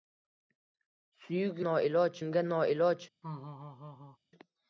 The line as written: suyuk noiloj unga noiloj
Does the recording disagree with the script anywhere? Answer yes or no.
no